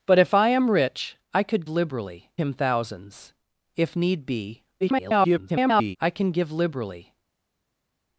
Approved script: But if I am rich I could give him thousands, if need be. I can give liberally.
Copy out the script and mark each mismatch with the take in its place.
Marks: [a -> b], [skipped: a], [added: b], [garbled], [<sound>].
But if I am rich I could [give -> liberally] him thousands, if need be. [garbled] I can give liberally.